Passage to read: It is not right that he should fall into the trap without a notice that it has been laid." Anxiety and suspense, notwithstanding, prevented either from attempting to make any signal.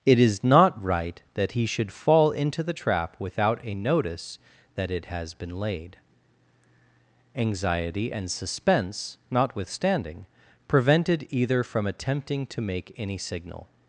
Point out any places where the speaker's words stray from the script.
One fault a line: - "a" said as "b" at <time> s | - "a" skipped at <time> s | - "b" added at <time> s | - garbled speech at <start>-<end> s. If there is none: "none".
none